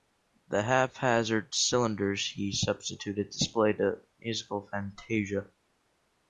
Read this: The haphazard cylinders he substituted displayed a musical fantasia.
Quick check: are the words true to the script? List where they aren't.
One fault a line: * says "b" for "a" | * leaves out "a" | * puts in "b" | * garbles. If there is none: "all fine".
all fine